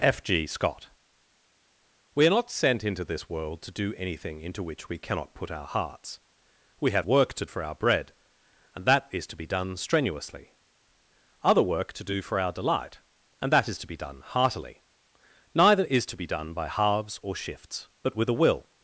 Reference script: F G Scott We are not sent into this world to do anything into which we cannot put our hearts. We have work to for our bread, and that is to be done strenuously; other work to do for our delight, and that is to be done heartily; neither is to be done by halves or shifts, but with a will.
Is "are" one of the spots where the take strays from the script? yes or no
no